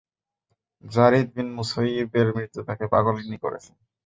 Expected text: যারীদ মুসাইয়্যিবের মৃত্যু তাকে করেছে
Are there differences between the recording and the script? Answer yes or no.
yes